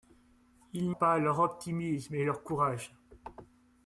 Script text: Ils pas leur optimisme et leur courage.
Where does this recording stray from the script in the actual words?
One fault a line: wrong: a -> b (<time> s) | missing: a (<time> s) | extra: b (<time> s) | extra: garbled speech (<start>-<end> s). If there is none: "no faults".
no faults